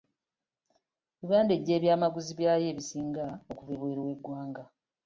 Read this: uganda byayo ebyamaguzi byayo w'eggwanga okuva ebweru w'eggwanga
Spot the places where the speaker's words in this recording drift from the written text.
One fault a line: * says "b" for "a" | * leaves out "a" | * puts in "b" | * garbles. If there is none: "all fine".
* says "eggya" for "byayo"
* says "ebisinga" for "w'eggwanga"